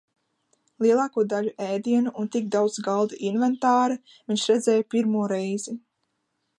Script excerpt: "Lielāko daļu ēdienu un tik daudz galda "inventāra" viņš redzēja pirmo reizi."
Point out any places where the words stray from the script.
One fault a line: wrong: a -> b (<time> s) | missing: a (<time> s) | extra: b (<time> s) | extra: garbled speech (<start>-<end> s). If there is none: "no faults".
no faults